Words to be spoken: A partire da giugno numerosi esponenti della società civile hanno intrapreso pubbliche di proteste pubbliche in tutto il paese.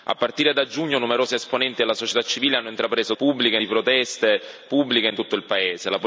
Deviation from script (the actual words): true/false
false